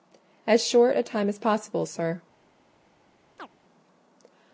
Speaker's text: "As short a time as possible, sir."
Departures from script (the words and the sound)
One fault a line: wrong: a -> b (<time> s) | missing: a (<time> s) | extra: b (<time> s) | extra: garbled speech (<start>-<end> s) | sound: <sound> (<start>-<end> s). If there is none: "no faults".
sound: chirp (3.4-3.5 s)